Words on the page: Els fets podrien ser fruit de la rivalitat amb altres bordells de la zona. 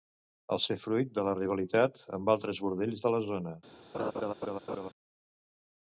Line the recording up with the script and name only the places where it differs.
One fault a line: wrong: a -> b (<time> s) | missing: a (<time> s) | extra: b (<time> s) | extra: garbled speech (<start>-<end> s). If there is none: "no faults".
missing: fets podrien (0.6 s)